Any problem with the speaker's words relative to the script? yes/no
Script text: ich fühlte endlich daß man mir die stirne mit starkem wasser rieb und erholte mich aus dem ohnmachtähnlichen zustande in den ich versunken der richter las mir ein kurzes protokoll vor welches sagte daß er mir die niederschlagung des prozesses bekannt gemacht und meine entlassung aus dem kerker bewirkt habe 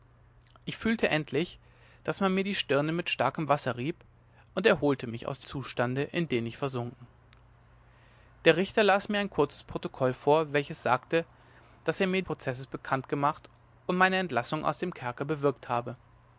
yes